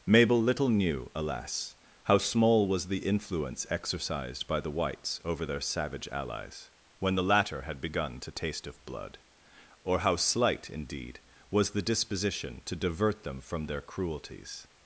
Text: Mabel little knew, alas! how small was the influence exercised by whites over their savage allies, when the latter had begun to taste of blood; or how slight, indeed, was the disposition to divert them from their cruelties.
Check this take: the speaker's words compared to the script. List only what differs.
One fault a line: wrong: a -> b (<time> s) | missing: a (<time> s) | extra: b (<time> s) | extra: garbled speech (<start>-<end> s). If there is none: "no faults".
extra: the (4.6 s)